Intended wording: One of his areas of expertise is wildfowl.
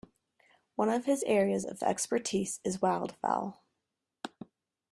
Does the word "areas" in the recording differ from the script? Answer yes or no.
no